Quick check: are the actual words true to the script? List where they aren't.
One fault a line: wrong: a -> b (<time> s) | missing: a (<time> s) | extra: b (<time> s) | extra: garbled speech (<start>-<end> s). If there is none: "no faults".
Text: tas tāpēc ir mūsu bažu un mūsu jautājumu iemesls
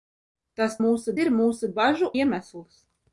wrong: tāpēc -> mūsu (0.8 s)
missing: un mūsu jautājumu (2.1 s)